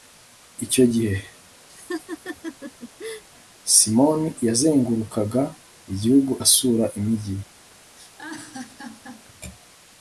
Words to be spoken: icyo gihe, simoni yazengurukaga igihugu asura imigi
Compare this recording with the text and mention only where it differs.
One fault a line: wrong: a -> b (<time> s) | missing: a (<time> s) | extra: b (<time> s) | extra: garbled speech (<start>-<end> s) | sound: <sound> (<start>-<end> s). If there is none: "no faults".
sound: laugh (1.7-3.2 s)
sound: laugh (8.0-9.3 s)